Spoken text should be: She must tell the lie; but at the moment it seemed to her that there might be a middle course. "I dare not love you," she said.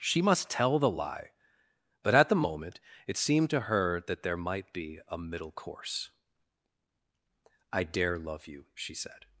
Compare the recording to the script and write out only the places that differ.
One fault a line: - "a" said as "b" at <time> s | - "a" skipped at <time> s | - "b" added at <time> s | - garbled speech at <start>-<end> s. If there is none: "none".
- "not" skipped at 8.2 s